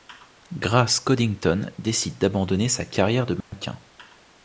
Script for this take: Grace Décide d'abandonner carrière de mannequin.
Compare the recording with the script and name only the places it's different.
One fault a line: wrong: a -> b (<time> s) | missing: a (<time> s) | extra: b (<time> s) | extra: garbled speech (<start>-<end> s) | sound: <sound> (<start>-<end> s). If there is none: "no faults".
extra: Coddington (1.0 s)
extra: sa (2.7 s)
sound: dropout (3.4-3.5 s)